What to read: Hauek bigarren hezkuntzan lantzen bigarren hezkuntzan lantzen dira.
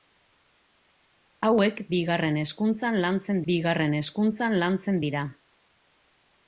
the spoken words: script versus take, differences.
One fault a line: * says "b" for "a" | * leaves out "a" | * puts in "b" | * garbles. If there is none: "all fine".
all fine